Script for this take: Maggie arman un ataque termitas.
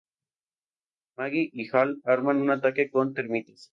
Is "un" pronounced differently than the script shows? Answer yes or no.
no